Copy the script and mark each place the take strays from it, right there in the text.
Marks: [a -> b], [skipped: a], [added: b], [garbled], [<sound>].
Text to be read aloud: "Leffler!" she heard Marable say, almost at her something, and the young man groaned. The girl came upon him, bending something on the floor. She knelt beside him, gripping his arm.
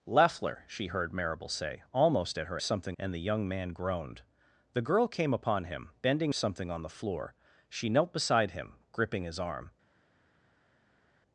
"Leffler!" she heard Marable say, almost at her something, and the young man groaned. The girl came upon him, bending something on the floor. She knelt beside him, gripping his arm.